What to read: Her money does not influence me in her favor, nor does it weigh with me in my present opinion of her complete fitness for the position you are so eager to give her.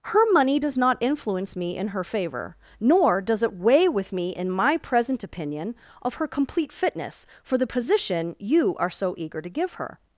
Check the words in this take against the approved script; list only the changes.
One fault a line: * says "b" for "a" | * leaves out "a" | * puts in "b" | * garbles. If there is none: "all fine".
all fine